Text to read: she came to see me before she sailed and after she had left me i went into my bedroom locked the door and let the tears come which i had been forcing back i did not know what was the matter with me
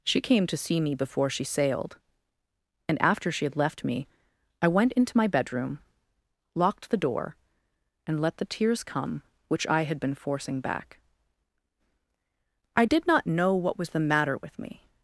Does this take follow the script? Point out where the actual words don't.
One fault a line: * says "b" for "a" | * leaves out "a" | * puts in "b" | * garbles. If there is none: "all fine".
all fine